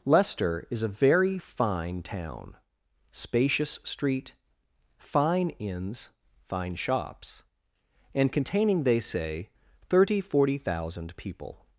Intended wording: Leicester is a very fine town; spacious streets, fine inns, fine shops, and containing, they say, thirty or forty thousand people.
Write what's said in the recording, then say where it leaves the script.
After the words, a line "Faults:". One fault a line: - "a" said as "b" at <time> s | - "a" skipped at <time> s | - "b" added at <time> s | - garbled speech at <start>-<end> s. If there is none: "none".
Leicester is a very fine town; spacious street, fine inns, fine shops, and containing, they say, thirty forty thousand people.
Faults:
- "streets" said as "street" at 3.8 s
- "or" skipped at 10.2 s